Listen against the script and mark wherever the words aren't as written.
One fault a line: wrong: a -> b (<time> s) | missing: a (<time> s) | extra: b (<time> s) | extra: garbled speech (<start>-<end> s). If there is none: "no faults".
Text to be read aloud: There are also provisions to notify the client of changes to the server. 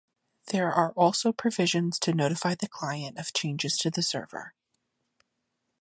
no faults